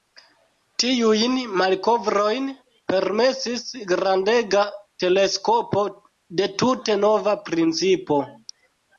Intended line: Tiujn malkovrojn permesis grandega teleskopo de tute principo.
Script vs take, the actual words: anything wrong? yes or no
yes